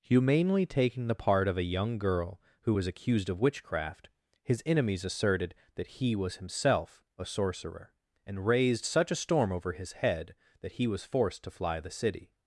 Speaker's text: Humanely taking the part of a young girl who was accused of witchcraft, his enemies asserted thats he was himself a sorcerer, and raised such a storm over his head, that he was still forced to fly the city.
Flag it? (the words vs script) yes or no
yes